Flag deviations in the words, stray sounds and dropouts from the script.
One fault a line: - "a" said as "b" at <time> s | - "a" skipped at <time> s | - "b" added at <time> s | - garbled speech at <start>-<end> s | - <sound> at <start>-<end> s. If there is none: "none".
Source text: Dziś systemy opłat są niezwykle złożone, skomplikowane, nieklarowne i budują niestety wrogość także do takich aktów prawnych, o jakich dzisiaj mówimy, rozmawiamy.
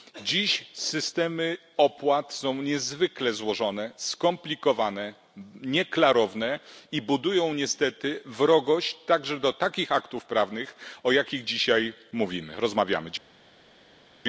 none